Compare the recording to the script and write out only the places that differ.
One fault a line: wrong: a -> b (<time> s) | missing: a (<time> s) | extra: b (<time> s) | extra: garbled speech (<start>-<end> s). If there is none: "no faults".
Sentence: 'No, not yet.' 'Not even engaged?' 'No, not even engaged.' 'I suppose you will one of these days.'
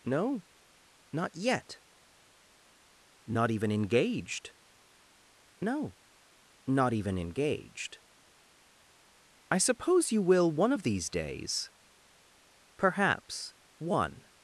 extra: Perhaps one (12.8 s)